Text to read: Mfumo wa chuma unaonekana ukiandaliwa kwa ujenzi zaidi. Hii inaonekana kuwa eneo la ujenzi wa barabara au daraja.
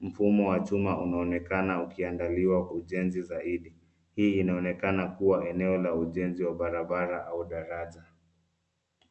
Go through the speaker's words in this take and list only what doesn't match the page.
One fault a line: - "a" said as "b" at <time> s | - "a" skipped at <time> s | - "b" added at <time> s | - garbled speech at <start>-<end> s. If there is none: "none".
- "kwa" skipped at 2.7 s